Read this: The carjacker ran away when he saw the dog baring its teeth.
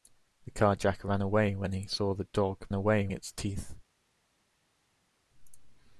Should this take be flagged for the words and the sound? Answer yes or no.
yes